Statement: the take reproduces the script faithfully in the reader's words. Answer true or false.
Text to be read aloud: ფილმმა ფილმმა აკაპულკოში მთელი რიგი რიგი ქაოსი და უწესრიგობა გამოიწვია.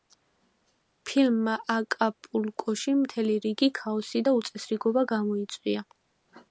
false